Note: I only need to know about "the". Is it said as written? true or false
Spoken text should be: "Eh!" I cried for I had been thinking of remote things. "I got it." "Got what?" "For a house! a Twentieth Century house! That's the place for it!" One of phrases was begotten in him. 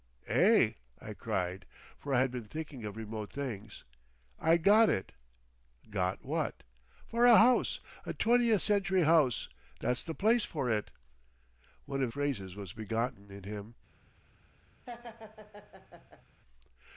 true